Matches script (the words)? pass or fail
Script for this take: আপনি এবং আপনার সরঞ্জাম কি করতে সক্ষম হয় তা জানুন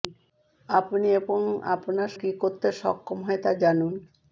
fail